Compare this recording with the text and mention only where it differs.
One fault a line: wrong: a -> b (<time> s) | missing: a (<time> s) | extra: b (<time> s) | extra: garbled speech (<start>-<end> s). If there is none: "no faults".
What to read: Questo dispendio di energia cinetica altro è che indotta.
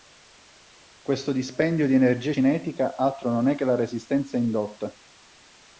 extra: non (3.3 s)
extra: la resistenza (3.6 s)